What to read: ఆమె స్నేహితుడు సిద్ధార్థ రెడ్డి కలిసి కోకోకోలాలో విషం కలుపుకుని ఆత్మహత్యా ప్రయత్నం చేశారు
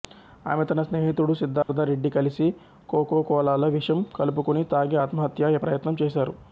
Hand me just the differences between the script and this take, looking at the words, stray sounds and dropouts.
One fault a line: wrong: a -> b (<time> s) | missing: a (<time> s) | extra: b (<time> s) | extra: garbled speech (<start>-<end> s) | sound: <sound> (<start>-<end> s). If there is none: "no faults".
extra: తన (0.6 s)
sound: dropout (1.6-1.7 s)
extra: తాగి (4.7 s)